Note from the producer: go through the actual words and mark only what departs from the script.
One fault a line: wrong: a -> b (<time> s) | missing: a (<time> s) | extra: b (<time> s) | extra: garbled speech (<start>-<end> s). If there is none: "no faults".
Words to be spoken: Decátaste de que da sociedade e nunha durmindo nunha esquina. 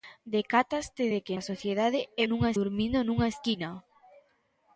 no faults